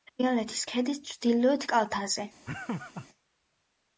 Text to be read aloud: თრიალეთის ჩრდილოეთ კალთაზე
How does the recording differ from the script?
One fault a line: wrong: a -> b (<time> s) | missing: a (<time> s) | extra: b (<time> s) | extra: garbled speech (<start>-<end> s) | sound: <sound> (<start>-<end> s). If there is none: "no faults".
extra: ქედის (0.7 s)
sound: laugh (2.5-3.1 s)